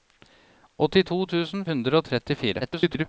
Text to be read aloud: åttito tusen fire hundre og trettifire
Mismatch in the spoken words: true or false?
true